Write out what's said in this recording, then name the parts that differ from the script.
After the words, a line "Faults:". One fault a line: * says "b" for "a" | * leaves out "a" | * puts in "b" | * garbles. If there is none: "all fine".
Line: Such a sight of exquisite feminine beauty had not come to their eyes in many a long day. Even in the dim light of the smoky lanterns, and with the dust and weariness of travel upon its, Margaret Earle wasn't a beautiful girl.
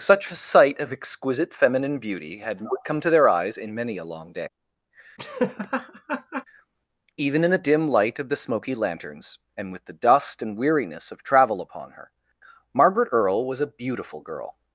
Such a sight of exquisite feminine beauty had not come to their eyes in many a long day. Even in the dim light of the smoky lanterns, and with the dust and weariness of travel upon her, Margaret Earle was a beautiful girl.
Faults:
* says "her" for "its"
* says "was" for "wasn't"